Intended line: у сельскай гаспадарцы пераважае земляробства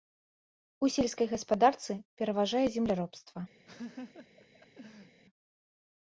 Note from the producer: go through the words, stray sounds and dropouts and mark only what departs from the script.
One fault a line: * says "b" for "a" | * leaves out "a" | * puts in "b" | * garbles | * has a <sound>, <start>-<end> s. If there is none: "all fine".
* has a laugh, 3.7-5.2 s